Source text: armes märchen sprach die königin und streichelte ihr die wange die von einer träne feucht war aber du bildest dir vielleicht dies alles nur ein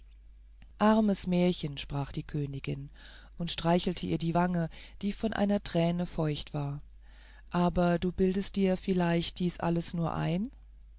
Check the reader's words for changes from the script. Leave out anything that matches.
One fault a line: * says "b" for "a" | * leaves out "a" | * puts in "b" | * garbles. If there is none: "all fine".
all fine